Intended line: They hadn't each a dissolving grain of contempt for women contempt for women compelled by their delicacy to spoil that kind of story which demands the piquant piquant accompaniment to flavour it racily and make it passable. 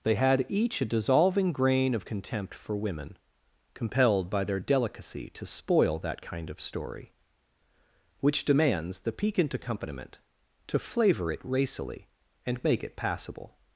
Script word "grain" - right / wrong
right